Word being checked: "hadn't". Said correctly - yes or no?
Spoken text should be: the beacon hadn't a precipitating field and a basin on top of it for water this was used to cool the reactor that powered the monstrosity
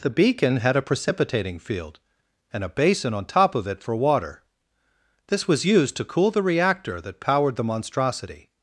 no